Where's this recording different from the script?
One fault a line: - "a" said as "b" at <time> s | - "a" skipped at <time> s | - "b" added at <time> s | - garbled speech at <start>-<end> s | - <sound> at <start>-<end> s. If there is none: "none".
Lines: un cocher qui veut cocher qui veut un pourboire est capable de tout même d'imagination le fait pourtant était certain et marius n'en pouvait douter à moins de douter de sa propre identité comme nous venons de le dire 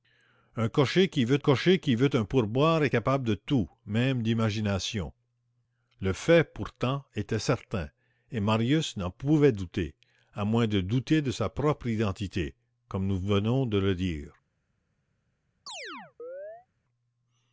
- chirp at 15.7-16.7 s